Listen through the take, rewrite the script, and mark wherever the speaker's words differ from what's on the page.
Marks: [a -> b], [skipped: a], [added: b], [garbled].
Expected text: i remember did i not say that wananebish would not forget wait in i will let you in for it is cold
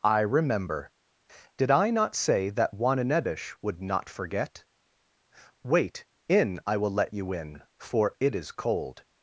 i remember did i not say that wananebish would not forget wait in i will let you in for it is cold